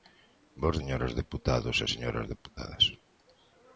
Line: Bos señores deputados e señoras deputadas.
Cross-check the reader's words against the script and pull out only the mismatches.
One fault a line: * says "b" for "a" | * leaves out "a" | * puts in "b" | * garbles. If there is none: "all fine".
all fine